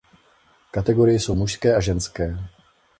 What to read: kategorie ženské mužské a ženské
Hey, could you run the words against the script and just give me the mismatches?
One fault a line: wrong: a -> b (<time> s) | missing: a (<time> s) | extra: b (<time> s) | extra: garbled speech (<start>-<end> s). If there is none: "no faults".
wrong: ženské -> jsou (1.2 s)